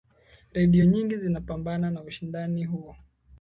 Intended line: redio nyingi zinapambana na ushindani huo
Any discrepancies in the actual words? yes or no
no